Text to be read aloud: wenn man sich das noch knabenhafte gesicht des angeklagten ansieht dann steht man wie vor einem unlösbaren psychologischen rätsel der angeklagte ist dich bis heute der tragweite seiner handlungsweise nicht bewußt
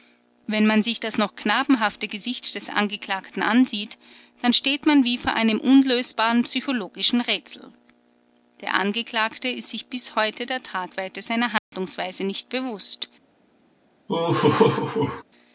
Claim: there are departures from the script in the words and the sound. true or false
true